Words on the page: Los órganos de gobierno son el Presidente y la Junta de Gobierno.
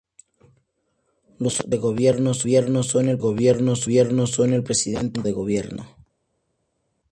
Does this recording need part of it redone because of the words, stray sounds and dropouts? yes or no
yes